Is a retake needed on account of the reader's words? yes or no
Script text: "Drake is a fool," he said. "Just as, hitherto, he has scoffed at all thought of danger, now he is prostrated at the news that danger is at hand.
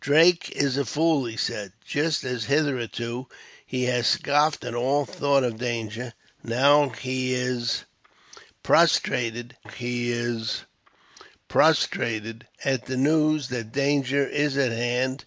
yes